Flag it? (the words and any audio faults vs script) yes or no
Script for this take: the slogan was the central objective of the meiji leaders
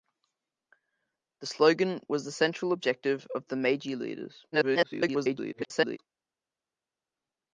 yes